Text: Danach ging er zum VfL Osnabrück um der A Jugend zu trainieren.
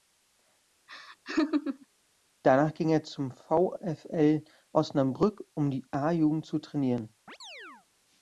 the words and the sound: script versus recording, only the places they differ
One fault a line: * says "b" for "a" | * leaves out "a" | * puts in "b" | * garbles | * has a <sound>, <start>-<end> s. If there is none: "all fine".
* has a laugh, 0.9-1.9 s
* says "die" for "der"
* has a chirp, 7.3-7.9 s